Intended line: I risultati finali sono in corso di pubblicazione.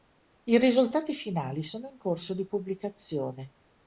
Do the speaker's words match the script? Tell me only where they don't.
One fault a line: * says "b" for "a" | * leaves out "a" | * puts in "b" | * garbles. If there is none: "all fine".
all fine